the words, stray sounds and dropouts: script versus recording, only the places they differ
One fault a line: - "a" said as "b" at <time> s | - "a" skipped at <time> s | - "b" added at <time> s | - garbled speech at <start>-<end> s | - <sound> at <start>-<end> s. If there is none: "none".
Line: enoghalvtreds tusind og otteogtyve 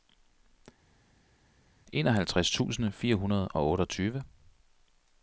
- "fire hundrede" added at 2.9 s